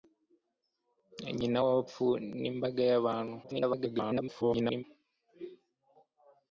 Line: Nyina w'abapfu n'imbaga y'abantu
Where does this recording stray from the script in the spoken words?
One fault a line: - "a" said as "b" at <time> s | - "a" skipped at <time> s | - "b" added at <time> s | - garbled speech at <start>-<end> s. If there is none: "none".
- garbled speech at 3.4-4.8 s